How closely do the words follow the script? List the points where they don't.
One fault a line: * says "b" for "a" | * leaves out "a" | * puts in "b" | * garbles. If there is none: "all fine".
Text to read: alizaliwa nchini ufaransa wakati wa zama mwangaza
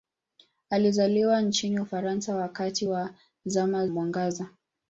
all fine